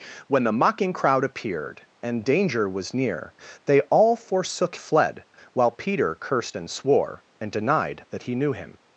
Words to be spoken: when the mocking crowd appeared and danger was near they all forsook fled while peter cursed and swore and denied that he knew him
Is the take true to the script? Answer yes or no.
yes